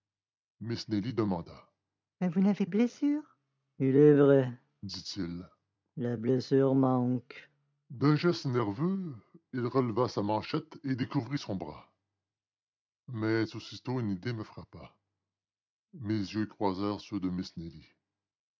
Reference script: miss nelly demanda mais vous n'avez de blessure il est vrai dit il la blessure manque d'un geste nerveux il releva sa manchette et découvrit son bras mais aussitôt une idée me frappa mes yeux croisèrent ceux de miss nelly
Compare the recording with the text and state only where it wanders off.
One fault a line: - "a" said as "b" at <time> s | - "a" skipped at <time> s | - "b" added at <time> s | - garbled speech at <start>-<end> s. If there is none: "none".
none